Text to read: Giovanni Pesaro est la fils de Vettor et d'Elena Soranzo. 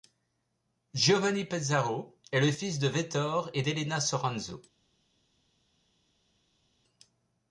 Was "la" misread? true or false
true